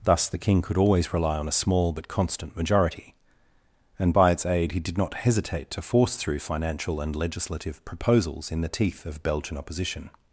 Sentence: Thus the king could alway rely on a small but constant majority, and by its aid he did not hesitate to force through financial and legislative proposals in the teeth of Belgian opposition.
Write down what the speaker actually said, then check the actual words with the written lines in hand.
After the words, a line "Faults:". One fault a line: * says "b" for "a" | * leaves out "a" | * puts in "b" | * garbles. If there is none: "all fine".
Thus the king could always rely on a small but constant majority, and by its aid he did not hesitate to force through financial and legislative proposals in the teeth of Belgian opposition.
Faults:
* says "always" for "alway"